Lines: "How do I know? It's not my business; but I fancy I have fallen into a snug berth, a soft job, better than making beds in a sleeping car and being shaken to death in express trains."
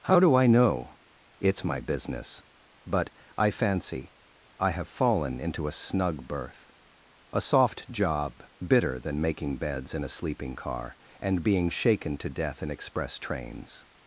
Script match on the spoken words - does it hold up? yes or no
no